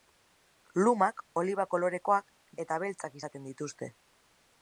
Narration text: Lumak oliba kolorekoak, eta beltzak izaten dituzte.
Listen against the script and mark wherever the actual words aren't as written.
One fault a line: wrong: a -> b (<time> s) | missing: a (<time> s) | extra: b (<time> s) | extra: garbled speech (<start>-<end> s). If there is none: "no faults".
no faults